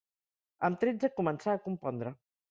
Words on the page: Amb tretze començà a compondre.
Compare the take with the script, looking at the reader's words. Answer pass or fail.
pass